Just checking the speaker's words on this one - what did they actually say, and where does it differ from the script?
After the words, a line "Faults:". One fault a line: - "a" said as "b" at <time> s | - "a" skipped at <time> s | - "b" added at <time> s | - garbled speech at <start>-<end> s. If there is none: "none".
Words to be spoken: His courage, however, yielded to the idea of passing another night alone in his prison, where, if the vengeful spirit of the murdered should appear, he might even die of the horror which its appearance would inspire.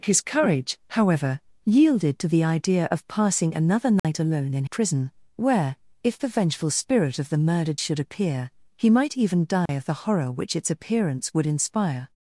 His courage, however, yielded to the idea of passing another night alone in prison, where, if the vengeful spirit of the murdered should appear, he might even die of the horror which its appearance would inspire.
Faults:
- "his" skipped at 4.7 s